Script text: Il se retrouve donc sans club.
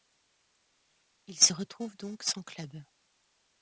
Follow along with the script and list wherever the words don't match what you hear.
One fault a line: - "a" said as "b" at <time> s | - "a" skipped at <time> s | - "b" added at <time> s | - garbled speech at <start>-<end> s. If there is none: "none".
none